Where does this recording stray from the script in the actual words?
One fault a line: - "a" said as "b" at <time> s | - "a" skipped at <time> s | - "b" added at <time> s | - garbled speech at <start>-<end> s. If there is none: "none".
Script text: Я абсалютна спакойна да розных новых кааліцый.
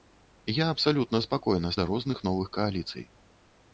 none